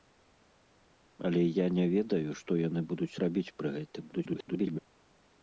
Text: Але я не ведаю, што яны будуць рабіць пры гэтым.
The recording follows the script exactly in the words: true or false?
false